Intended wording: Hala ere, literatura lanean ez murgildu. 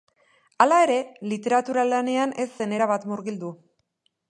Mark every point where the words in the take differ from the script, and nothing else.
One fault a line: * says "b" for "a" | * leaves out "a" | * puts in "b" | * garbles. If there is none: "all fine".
* puts in "zen erabat"